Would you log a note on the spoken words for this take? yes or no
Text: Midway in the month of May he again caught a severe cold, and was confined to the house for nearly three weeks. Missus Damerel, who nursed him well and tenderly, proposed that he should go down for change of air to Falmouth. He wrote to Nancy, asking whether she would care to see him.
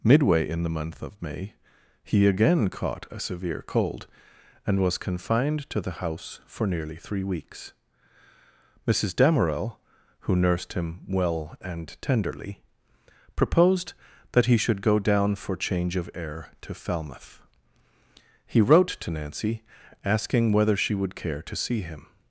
no